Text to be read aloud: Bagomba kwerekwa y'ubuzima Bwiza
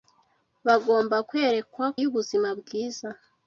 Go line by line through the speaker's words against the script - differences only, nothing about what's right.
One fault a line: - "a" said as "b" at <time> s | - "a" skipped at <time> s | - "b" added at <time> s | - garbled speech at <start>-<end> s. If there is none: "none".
none